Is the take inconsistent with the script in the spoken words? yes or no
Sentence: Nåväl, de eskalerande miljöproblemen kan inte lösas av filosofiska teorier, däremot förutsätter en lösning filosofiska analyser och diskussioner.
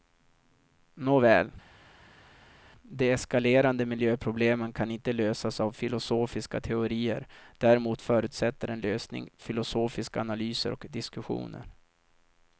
no